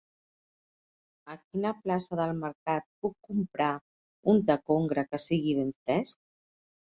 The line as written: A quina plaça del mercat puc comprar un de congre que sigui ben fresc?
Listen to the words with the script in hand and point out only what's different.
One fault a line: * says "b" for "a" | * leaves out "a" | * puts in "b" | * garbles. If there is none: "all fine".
all fine